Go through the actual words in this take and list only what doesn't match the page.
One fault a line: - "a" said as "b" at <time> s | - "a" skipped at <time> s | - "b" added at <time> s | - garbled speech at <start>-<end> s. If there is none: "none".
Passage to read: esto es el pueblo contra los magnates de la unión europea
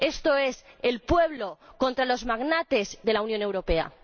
none